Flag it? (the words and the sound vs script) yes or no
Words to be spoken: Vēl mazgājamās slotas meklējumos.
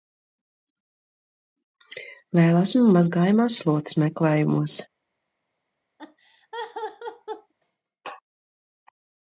yes